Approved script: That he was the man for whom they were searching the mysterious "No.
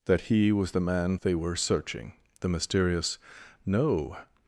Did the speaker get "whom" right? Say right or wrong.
wrong